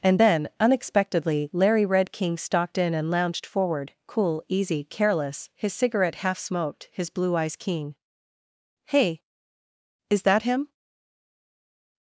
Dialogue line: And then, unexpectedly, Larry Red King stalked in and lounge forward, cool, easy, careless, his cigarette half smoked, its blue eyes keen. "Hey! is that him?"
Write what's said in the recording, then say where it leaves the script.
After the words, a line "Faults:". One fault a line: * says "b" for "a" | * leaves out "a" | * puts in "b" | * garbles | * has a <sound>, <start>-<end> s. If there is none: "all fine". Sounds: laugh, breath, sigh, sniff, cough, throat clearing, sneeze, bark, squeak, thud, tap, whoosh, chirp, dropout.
And then, unexpectedly, Larry Red King stalked in and lounged forward, cool, easy, careless, his cigarette half smoked, his blue eyes keen. "Hey! is that him?"
Faults:
* says "lounged" for "lounge"
* says "his" for "its"